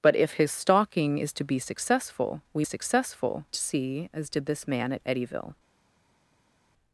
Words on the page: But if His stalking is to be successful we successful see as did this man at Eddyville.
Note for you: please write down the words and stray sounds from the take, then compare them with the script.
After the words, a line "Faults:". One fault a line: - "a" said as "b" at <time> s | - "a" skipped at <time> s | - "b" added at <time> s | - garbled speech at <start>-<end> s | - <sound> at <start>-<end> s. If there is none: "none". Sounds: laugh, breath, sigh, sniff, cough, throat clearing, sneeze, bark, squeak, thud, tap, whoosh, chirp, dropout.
But if His stalking is to be successful we successful see as did this man at Eddyville.
Faults:
none